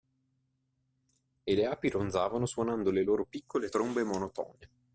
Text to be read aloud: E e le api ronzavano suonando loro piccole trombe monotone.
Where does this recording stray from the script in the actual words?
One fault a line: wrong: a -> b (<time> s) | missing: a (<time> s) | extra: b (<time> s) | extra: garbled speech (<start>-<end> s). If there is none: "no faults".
missing: e (1.5 s)
extra: le (2.9 s)